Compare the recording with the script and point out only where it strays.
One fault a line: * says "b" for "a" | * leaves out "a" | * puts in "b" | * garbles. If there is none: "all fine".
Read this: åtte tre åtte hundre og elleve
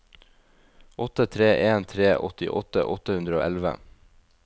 * puts in "en tre åttiåtte"